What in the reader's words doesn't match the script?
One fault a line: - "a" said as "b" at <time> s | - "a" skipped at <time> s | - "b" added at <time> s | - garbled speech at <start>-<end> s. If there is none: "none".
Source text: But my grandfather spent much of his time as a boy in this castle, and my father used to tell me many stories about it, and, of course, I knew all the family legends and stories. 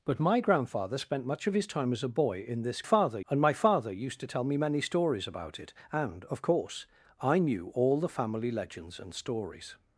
- "castle" said as "father" at 2.8 s